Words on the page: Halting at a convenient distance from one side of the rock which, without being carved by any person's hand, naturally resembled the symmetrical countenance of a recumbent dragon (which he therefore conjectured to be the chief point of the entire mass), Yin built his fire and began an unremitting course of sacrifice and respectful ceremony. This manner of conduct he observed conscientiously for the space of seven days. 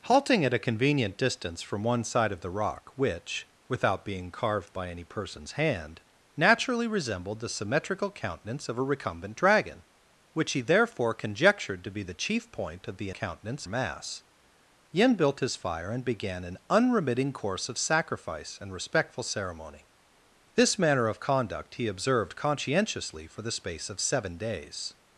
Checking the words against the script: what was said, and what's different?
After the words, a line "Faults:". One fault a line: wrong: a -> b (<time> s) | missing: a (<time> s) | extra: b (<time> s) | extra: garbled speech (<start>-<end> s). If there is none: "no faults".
Halting at a convenient distance from one side of the rock which, without being carved by any person's hand, naturally resembled the symmetrical countenance of a recumbent dragon (which he therefore conjectured to be the chief point of the countenance mass), Yin built his fire and began an unremitting course of sacrifice and respectful ceremony. This manner of conduct he observed conscientiously for the space of seven days.
Faults:
wrong: entire -> countenance (13.1 s)